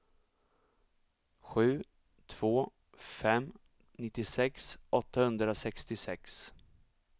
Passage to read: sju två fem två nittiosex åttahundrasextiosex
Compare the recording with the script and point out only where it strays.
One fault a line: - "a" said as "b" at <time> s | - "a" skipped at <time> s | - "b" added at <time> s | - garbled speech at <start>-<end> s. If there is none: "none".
- "två" skipped at 3.5 s